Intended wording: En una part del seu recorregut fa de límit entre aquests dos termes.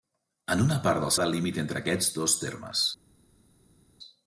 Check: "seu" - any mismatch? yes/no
yes